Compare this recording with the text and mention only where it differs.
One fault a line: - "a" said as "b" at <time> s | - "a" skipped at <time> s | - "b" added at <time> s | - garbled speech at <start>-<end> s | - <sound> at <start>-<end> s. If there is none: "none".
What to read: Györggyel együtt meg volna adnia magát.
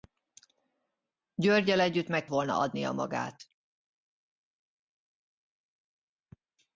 none